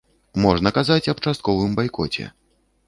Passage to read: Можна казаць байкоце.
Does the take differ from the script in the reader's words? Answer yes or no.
yes